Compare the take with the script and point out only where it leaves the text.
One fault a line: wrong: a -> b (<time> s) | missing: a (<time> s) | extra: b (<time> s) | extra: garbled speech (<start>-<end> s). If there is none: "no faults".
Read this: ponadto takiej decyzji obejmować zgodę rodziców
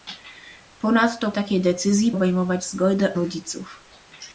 no faults